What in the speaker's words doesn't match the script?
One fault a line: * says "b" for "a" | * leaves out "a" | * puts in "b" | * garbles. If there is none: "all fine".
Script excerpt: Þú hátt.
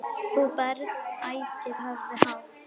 * puts in "berð ætíð höfuð"